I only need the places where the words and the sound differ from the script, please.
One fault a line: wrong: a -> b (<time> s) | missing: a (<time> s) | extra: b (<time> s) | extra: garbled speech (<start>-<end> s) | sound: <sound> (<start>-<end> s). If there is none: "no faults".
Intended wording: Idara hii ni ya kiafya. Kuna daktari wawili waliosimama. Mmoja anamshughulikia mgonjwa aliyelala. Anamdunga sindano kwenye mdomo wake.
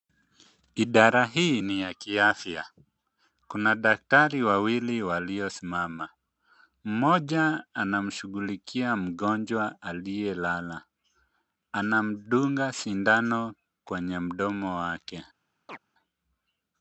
sound: chirp (15.7-15.8 s)